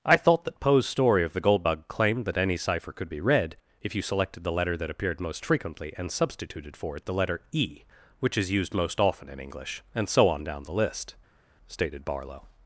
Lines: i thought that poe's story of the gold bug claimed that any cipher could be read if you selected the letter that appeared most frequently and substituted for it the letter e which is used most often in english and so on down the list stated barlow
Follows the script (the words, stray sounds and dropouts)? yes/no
yes